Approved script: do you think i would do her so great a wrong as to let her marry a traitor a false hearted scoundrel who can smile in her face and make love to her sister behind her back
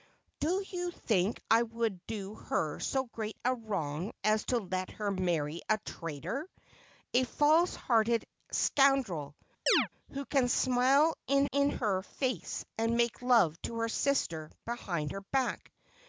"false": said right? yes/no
yes